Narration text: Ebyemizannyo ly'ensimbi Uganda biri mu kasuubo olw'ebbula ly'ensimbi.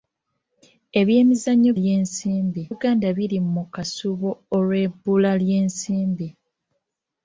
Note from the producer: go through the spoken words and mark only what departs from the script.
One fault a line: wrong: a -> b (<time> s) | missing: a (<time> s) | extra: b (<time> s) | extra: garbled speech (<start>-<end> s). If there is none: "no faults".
no faults